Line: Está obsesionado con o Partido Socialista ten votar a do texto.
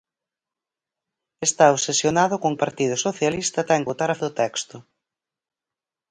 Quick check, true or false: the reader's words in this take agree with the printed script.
true